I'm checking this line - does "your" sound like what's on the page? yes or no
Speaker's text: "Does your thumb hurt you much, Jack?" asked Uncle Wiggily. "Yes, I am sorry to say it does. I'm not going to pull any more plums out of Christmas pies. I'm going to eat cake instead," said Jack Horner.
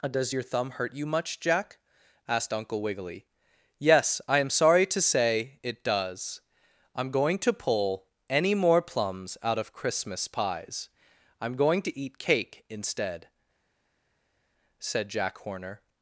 yes